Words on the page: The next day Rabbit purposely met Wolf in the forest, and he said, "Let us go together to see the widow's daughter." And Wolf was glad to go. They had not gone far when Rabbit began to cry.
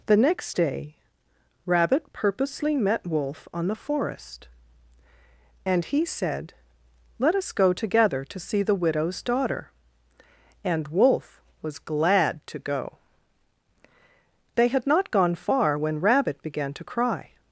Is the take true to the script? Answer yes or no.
no